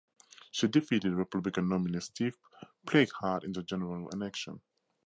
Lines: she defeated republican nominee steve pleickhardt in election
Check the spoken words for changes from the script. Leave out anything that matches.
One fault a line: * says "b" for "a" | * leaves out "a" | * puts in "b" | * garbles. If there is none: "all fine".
* puts in "the general"